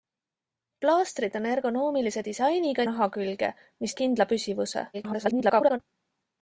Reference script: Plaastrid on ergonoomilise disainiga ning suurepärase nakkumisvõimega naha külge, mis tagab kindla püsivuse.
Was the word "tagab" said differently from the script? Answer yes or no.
yes